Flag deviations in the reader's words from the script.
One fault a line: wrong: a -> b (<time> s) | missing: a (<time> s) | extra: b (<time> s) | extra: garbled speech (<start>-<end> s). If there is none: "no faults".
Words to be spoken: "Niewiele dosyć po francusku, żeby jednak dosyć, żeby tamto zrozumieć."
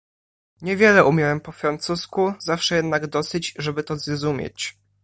wrong: dosyć -> umiałem (1.1 s)
wrong: żeby -> zawsze (2.4 s)
wrong: tamto -> to (3.8 s)